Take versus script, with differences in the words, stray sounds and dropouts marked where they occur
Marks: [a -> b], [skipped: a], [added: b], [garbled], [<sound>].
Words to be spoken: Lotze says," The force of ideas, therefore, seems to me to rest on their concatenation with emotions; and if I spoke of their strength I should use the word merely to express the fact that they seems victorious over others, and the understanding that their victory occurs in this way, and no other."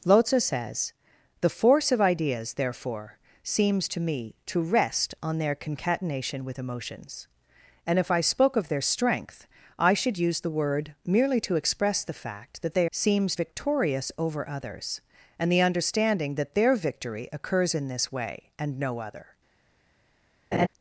Lotze says," The force of ideas, therefore, seems to me to rest on their concatenation with emotions; and if I spoke of their strength I should use the word merely to express the fact that they seems victorious over others, and the understanding that their victory occurs in this way, and no other." [laugh]